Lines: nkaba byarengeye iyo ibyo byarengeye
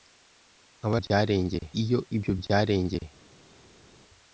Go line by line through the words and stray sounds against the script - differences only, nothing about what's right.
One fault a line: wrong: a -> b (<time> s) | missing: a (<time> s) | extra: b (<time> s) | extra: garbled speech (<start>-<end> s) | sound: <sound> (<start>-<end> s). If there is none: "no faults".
no faults